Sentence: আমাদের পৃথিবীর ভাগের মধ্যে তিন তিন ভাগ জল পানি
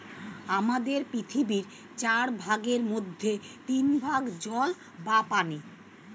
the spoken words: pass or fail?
fail